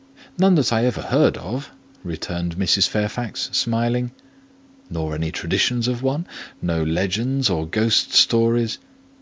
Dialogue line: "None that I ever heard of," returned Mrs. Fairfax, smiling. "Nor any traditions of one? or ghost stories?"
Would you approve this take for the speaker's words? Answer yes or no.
no